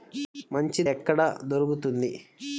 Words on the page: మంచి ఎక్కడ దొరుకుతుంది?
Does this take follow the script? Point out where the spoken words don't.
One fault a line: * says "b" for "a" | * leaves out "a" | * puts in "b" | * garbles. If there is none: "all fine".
all fine